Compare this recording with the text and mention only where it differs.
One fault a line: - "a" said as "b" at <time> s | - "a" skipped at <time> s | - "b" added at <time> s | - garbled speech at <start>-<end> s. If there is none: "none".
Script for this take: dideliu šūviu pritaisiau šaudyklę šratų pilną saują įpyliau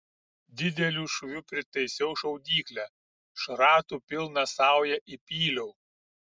none